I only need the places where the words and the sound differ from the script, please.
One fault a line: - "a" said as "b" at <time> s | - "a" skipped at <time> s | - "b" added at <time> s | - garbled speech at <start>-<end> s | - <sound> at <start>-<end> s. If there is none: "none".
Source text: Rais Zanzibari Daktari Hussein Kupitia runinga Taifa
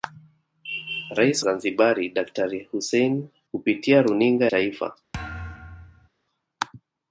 - thud at 5.1-6.1 s